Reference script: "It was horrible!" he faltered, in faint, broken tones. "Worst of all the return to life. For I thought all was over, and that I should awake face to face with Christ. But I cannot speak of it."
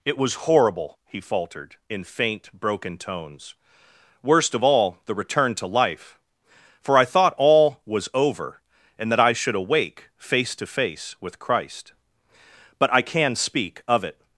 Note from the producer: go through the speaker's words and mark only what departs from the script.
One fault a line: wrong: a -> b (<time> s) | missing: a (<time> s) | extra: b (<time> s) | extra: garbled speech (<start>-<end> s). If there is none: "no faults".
wrong: cannot -> can (13.0 s)